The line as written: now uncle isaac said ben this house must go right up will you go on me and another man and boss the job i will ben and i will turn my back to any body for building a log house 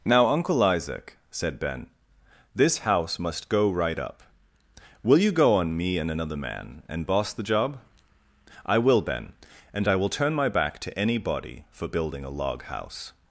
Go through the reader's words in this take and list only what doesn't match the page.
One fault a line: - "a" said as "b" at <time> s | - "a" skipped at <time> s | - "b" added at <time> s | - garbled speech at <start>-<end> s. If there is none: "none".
none